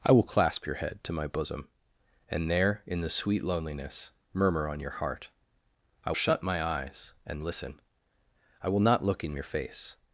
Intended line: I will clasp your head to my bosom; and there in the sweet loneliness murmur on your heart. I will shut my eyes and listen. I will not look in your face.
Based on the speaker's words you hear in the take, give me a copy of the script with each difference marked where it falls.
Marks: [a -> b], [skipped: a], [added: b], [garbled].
I will clasp your head to my bosom; and there in the sweet loneliness murmur on your heart. I [skipped: will] shut my eyes and listen. I will not look in your face.